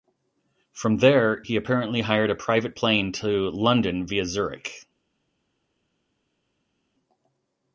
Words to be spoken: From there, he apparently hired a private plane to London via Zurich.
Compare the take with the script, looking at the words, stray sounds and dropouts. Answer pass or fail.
pass